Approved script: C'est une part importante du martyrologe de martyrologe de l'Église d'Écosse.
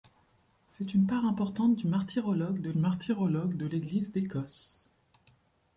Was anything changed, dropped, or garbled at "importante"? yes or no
no